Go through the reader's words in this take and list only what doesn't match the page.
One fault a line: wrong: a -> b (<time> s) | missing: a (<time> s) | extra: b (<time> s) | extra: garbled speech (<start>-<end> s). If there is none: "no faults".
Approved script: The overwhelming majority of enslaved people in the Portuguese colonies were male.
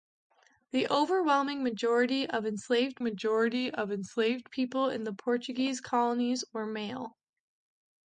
extra: majority of enslaved (3.0 s)